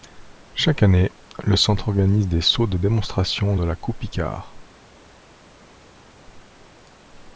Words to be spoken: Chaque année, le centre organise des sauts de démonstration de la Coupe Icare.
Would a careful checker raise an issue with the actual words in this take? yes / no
no